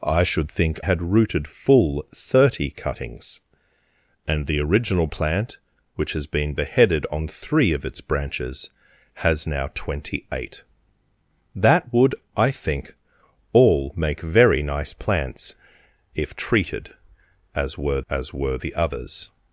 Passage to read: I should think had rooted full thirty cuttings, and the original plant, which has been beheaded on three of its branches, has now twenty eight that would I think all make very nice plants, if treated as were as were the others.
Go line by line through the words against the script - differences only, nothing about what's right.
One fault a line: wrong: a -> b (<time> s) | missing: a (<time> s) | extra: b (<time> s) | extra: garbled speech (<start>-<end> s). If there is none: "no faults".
no faults